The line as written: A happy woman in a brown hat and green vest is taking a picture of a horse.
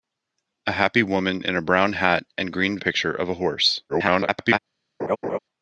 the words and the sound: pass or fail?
fail